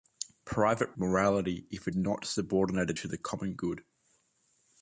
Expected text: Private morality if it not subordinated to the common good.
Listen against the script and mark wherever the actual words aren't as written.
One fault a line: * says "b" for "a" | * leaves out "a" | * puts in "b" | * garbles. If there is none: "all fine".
all fine